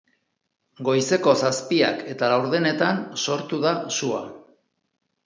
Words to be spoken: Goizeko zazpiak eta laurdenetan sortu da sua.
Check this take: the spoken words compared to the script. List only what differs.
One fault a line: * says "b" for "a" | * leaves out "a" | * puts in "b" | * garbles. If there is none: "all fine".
all fine